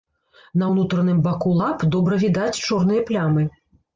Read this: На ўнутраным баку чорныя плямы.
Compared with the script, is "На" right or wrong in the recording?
right